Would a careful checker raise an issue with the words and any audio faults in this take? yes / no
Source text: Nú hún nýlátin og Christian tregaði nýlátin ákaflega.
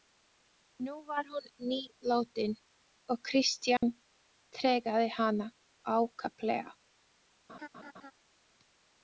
yes